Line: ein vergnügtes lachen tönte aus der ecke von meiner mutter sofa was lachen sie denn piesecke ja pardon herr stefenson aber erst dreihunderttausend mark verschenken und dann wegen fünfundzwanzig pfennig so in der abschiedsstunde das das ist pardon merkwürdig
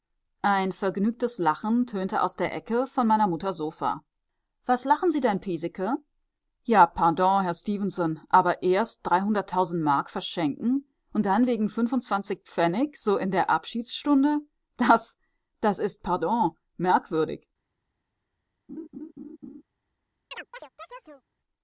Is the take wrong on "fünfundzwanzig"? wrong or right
right